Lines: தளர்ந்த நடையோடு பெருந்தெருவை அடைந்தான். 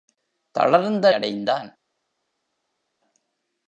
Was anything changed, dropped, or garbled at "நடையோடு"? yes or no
yes